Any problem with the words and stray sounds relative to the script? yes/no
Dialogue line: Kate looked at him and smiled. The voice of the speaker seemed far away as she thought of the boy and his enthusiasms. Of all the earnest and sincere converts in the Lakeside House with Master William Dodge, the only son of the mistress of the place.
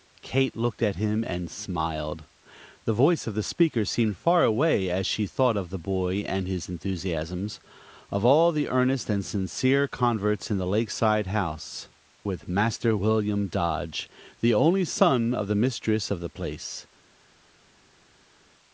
no